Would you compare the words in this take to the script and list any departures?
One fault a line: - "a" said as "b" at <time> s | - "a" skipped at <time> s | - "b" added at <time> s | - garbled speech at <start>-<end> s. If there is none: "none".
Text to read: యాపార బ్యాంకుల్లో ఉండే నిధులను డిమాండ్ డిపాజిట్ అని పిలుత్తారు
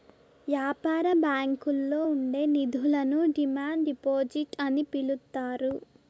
none